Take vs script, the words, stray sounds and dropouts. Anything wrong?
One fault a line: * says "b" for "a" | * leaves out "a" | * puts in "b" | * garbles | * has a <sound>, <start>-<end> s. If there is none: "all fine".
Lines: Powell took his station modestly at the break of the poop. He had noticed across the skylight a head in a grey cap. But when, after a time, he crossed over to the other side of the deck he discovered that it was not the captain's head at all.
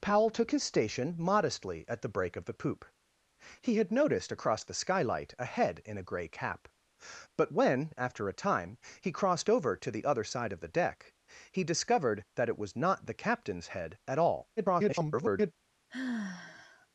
* garbles
* has a sigh, 15.9-16.9 s